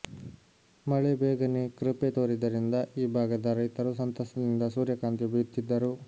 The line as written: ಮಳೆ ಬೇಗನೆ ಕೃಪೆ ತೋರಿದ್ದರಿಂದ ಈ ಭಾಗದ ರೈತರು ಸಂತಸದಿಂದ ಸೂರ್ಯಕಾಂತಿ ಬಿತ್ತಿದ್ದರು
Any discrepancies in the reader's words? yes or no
no